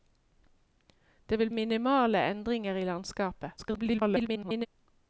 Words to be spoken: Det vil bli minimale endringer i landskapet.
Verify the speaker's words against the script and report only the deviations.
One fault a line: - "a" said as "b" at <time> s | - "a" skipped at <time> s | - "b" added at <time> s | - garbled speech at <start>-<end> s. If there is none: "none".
- "bli" skipped at 1.5 s
- garbled speech at 3.6-4.7 s